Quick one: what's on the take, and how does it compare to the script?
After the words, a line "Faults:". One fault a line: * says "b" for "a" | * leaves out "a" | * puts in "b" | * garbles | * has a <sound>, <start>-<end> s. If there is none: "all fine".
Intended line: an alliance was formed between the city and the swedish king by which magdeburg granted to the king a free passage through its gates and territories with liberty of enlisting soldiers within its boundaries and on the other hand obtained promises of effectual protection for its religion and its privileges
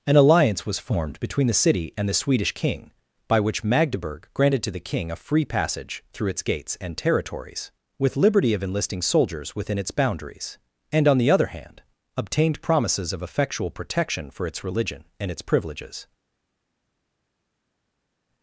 an alliance was formed between the city and the swedish king by which magdeburg granted to the king a free passage through its gates and territories with liberty of enlisting soldiers within its boundaries and on the other hand obtained promises of effectual protection for its religion and its privileges
Faults:
all fine